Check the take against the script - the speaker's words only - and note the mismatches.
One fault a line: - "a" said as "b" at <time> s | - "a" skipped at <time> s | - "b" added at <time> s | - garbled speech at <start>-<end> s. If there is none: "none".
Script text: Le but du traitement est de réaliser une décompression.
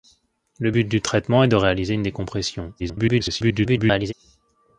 - garbled speech at 2.8-4.1 s